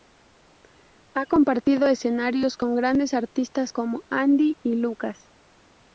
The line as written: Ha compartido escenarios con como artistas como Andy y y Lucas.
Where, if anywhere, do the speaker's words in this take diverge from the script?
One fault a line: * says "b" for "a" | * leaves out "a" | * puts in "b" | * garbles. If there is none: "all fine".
* says "grandes" for "como"
* leaves out "y"